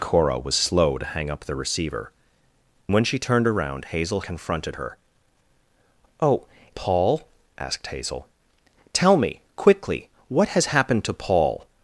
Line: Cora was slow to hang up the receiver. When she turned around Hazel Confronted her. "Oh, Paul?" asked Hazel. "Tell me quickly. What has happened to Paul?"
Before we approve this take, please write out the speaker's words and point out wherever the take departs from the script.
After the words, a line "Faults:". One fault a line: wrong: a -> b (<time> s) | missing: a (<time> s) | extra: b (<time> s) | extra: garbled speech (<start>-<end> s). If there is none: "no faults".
Cora was slow to hang up the receiver. When she turned around Hazel Confronted her. "Oh, Paul?" asked Hazel. "Tell me quickly. What has happened to Paul?"
Faults:
no faults